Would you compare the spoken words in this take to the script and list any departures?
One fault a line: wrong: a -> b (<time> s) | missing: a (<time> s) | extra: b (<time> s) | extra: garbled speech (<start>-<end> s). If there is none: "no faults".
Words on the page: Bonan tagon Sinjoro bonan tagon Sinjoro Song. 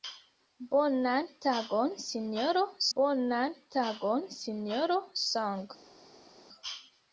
no faults